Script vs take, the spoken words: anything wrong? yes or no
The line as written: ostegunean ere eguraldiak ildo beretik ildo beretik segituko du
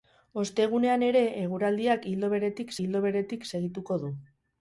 no